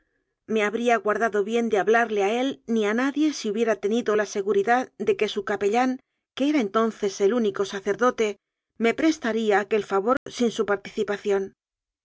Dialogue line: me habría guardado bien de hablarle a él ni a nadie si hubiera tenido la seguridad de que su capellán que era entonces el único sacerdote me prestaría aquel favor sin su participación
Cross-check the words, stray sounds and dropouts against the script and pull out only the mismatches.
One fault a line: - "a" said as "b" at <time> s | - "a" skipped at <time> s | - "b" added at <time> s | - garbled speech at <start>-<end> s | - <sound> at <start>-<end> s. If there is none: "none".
- dropout at 10.2-10.3 s